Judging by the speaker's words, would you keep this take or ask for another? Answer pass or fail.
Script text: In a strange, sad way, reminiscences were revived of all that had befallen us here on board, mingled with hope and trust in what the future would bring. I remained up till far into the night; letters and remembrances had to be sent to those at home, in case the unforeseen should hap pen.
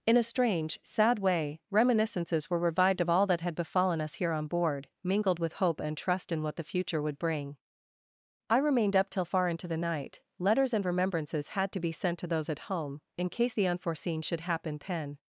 fail